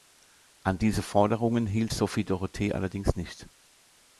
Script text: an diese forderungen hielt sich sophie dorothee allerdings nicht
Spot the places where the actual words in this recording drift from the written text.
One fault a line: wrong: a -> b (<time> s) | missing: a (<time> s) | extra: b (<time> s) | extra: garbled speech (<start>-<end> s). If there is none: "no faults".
missing: sich (1.9 s)